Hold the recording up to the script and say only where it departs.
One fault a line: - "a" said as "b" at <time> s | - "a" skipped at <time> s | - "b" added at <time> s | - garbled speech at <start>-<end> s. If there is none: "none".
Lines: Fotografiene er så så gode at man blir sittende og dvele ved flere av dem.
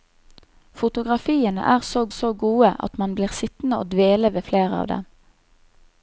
none